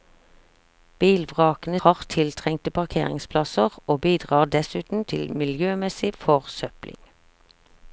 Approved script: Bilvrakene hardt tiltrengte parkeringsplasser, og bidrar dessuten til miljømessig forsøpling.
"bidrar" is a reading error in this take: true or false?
false